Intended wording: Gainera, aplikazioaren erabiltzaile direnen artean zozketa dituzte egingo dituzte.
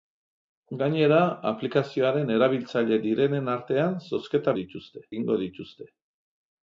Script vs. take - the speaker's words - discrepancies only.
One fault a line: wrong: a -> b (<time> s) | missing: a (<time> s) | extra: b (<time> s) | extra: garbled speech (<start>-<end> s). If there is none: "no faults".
no faults